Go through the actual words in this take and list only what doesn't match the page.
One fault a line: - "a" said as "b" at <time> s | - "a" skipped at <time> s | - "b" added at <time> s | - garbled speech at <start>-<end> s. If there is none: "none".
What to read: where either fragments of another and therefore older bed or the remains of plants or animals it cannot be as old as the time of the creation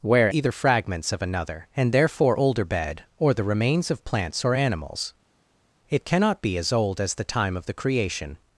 none